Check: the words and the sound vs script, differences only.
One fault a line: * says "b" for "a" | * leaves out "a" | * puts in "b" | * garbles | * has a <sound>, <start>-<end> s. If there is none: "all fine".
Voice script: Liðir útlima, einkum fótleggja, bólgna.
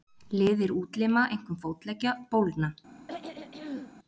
* has a throat clearing, 3.1-3.9 s